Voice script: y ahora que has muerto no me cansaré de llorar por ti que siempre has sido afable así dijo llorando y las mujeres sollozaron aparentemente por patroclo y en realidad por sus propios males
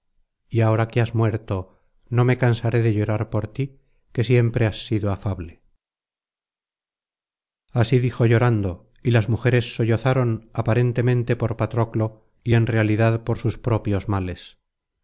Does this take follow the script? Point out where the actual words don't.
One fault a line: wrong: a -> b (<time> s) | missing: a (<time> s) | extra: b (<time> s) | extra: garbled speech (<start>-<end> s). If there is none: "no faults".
no faults